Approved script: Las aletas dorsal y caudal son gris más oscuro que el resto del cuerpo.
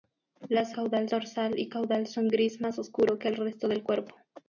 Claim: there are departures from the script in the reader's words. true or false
true